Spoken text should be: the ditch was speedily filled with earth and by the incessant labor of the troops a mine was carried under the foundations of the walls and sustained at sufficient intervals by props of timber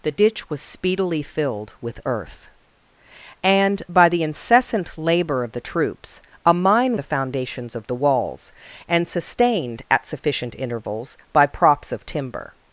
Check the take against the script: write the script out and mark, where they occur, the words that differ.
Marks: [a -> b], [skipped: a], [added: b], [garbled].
the ditch was speedily filled with earth and by the incessant labor of the troops a mine [skipped: was carried under] the foundations of the walls and sustained at sufficient intervals by props of timber